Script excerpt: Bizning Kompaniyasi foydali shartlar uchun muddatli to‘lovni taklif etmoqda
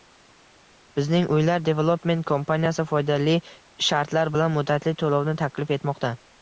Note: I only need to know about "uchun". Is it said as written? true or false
false